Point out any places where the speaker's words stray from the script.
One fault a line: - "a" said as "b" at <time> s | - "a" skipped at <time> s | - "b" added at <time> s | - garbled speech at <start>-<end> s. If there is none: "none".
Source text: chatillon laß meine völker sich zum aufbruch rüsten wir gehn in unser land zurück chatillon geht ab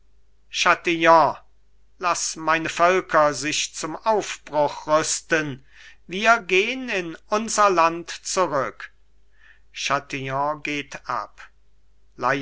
none